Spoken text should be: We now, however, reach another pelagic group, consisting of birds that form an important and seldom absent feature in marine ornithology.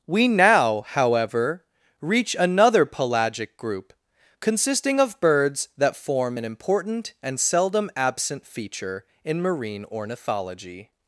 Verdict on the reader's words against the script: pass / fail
pass